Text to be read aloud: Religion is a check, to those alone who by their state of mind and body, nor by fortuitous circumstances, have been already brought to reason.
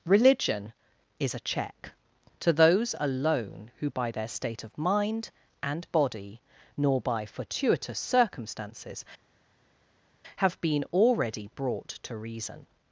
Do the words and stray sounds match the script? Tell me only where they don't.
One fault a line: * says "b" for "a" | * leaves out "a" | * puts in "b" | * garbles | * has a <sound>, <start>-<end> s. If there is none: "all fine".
all fine